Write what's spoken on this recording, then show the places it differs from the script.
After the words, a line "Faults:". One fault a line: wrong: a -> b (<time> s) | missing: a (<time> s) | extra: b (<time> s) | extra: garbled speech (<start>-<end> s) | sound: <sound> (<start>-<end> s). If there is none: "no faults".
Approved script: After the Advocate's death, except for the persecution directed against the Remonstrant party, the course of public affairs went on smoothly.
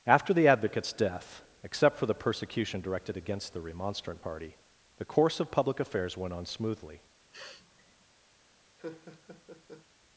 After the Advocate's death, except for the persecution directed against the Remonstrant party, the course of public affairs went on smoothly.
Faults:
sound: sniff (7.3-8.0 s)
sound: laugh (8.8-9.9 s)